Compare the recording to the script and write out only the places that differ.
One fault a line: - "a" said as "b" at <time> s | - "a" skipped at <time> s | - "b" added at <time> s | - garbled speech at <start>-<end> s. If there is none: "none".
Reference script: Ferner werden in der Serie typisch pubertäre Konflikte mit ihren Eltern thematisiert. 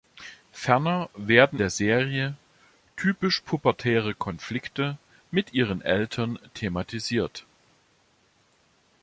- "in" skipped at 1.6 s